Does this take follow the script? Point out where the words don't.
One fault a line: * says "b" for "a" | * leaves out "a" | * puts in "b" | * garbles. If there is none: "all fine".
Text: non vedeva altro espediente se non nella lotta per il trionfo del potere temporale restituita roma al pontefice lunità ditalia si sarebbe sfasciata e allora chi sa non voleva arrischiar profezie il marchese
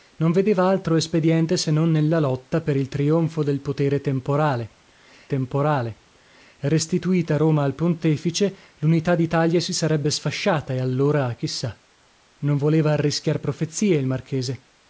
* puts in "temporale"